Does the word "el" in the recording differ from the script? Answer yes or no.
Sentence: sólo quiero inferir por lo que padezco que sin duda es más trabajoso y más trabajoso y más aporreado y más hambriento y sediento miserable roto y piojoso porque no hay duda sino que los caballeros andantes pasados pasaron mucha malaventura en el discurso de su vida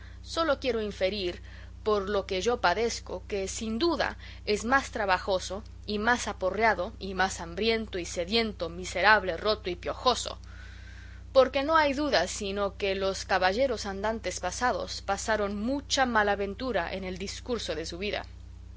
no